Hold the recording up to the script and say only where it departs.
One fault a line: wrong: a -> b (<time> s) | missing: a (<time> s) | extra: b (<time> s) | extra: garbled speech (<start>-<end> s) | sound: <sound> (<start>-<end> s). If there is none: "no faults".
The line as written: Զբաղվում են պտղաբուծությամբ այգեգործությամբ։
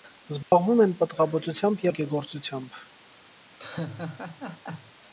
sound: dropout (0.4-0.5 s)
sound: laugh (3.6-4.9 s)